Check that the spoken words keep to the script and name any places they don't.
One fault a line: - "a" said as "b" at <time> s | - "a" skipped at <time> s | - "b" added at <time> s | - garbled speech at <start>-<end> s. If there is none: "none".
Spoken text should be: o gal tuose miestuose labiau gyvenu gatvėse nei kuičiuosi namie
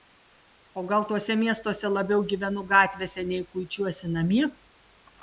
none